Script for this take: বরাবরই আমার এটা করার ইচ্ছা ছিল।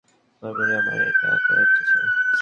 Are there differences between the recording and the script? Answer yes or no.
no